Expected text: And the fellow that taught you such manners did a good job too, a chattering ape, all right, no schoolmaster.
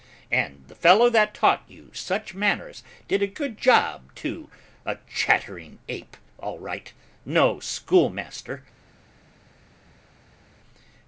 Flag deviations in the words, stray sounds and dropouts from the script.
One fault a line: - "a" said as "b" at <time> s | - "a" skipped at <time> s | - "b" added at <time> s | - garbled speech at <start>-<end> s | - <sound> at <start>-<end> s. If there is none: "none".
none